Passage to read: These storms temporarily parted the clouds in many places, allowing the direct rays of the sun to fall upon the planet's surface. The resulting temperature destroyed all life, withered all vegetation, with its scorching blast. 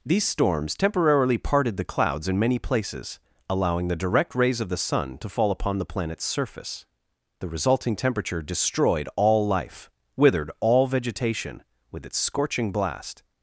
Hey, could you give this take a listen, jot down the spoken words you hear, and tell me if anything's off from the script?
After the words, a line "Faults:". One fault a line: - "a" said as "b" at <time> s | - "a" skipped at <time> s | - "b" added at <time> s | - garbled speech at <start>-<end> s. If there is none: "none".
These storms temporarily parted the clouds in many places, allowing the direct rays of the sun to fall upon the planet's surface. The resulting temperature destroyed all life, withered all vegetation, with its scorching blast.
Faults:
none